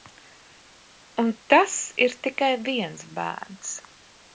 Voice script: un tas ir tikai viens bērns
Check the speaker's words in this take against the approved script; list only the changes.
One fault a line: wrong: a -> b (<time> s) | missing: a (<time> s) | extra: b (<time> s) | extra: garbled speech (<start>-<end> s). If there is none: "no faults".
no faults